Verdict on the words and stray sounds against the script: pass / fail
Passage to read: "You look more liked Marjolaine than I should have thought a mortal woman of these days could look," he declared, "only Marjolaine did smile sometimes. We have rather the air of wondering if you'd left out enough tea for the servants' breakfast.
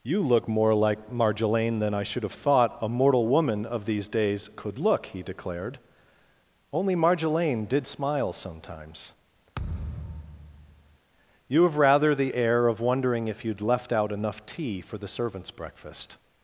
fail